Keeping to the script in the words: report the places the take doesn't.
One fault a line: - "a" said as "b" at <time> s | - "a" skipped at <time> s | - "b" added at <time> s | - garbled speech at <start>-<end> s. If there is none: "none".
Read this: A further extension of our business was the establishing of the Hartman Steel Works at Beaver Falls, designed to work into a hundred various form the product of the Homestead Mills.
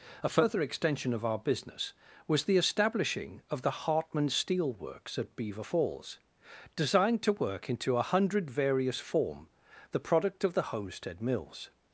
none